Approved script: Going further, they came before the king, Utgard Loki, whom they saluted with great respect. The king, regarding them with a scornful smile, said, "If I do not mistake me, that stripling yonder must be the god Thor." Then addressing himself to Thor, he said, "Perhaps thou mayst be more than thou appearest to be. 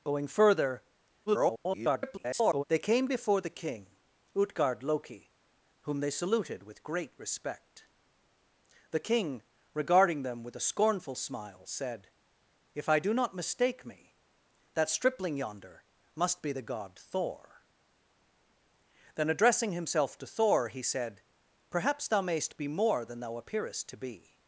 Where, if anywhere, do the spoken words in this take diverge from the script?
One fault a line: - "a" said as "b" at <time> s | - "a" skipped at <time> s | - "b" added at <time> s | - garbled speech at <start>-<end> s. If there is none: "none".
- garbled speech at 1.3-2.6 s